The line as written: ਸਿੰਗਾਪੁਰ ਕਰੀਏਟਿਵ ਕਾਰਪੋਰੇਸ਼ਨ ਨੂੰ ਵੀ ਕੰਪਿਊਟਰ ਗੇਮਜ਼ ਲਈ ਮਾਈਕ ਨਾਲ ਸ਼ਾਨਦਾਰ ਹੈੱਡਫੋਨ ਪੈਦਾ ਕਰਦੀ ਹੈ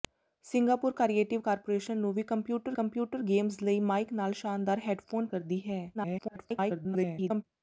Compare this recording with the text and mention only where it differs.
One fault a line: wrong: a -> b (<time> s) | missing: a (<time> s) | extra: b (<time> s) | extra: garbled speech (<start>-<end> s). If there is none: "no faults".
extra: ਕੰਪਿਊਟਰ (2.7 s)
missing: ਪੈਦਾ (5.3 s)
extra: garbled speech (5.9-7.4 s)